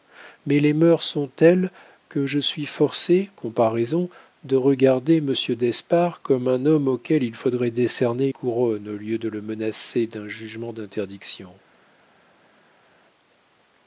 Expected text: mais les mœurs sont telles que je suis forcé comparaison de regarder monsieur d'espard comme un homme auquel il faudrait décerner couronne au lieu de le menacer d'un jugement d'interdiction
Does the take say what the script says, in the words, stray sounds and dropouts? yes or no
yes